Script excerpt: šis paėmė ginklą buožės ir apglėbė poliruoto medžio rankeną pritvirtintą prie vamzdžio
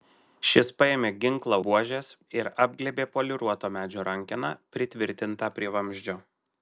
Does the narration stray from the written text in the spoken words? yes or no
no